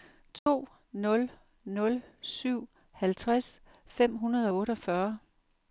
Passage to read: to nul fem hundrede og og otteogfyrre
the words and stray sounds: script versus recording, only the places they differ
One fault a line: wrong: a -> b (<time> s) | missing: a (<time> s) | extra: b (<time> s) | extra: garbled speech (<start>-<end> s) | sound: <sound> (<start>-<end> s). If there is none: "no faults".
sound: dropout (0.4-0.5 s)
extra: nul syv halvtreds (1.6 s)
missing: og (4.6 s)